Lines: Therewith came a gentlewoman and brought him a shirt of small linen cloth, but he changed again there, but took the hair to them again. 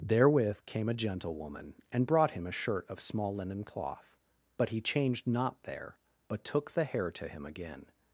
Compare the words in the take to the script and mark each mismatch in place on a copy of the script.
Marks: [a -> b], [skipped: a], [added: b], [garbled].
Therewith came a gentlewoman and brought him a shirt of small linen cloth, but he changed [again -> not] there, but took the hair to [them -> him] again.